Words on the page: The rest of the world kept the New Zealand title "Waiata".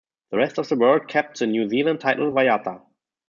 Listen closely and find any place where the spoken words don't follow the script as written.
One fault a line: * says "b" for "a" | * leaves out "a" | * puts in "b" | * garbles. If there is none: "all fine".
all fine